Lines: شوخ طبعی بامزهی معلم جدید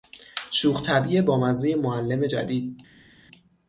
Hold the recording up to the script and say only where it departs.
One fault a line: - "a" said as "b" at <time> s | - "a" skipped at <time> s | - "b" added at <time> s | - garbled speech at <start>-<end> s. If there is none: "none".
none